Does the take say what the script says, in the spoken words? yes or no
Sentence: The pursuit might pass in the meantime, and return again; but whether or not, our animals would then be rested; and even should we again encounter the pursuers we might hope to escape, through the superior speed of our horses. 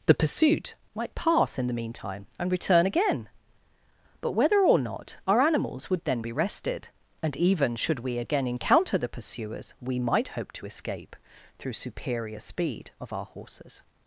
no